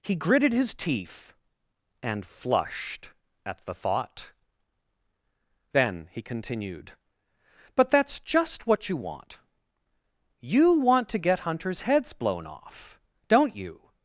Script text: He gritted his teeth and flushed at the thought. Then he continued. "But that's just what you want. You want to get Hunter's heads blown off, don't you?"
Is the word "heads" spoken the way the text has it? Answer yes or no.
yes